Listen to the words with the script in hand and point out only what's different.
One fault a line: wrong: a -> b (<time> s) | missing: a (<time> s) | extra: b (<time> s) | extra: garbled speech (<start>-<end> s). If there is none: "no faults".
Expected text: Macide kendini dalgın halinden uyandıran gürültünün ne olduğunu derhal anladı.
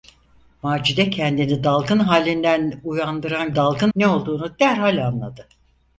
wrong: gürültünün -> dalgın (3.5 s)